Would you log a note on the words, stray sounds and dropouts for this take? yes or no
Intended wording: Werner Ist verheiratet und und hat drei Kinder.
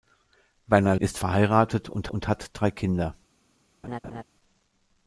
yes